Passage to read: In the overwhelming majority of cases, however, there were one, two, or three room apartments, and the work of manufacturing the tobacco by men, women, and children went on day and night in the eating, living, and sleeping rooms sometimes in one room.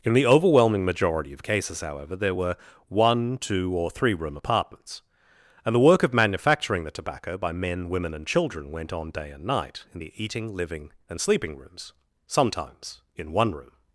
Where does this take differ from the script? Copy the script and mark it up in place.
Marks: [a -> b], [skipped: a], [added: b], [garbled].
In the overwhelming majority of cases, however, there were one, two, or three room apartments, and the work of manufacturing the tobacco by men, women, and children went on day and night in the eating, living, and sleeping rooms sometimes in one room.